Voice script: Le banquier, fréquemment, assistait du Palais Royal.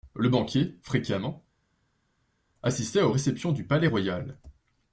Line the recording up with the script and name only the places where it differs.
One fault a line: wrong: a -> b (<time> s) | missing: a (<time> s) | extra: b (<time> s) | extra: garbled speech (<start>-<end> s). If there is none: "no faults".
extra: aux réceptions (3.0 s)